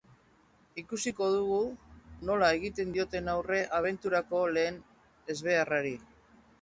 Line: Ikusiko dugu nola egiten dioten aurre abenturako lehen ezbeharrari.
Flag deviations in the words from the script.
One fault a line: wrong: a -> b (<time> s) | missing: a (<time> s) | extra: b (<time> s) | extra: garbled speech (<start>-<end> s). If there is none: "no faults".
no faults